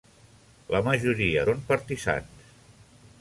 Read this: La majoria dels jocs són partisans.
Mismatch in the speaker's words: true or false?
true